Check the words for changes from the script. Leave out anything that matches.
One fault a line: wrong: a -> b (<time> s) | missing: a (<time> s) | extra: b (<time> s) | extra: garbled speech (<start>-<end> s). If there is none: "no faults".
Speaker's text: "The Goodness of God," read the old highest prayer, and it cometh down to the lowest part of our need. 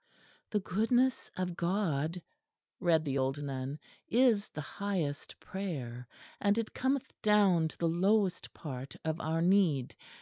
extra: nun is the (3.4 s)